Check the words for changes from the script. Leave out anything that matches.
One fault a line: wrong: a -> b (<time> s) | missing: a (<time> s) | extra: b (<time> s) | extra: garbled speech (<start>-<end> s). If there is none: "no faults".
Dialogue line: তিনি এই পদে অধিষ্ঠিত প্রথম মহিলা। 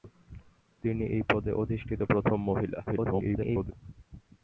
extra: garbled speech (2.9-3.7 s)